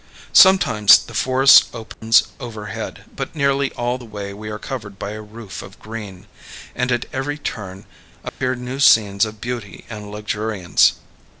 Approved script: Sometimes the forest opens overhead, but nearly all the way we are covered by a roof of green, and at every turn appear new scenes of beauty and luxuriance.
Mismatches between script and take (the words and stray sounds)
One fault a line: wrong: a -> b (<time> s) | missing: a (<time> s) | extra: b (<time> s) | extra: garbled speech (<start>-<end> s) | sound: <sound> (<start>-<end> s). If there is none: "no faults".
sound: dropout (1.9-2.0 s)
sound: dropout (8.3-8.4 s)